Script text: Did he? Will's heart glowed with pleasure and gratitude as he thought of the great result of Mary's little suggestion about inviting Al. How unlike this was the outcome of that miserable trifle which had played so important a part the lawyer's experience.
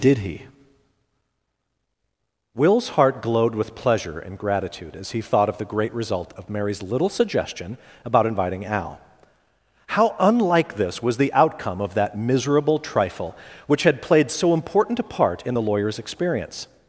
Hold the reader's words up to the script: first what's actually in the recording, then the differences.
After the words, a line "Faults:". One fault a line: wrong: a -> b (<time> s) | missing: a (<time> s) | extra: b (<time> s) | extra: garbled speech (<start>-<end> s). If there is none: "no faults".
Did he? Will's heart glowed with pleasure and gratitude as he thought of the great result of Mary's little suggestion about inviting Al. How unlike this was the outcome of that miserable trifle which had played so important a part in the lawyer's experience.
Faults:
extra: in (15.4 s)